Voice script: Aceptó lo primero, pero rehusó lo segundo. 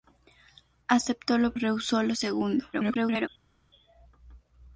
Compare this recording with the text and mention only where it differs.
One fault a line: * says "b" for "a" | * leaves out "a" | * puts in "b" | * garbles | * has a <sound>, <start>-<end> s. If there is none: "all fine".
* leaves out "primero pero"
* garbles